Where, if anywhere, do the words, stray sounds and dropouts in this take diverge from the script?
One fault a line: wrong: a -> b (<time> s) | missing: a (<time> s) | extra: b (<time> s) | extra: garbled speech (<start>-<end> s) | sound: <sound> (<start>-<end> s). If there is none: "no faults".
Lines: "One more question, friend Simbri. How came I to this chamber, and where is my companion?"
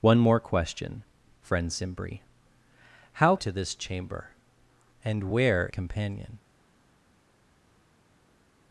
missing: came I (3.4 s)
missing: is my (5.7 s)